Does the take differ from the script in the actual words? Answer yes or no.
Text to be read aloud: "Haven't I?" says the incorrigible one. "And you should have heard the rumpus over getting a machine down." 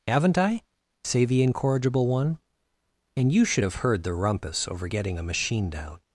yes